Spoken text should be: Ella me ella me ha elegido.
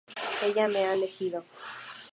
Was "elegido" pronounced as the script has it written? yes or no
yes